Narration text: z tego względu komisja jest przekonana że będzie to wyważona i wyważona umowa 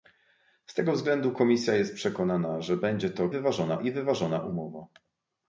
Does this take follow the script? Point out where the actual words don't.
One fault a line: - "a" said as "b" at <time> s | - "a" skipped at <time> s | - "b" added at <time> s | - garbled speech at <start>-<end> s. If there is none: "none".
none